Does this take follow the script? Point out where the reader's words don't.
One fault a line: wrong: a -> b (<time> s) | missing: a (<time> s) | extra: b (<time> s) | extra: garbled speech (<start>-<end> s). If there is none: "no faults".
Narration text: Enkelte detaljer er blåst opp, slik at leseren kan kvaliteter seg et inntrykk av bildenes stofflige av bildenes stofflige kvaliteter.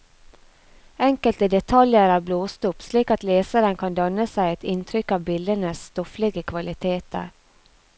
wrong: kvaliteter -> danne (4.0 s)
missing: av bildenes stofflige (6.5 s)